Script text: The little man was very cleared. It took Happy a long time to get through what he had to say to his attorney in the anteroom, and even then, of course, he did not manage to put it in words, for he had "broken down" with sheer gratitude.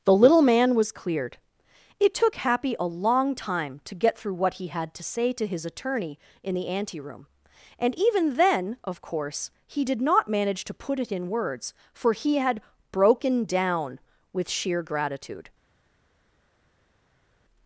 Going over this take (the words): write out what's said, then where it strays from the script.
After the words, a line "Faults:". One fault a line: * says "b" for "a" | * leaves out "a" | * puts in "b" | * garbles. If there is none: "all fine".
The little man was cleared. It took Happy a long time to get through what he had to say to his attorney in the anteroom, and even then, of course, he did not manage to put it in words, for he had "broken down" with sheer gratitude.
Faults:
* leaves out "very"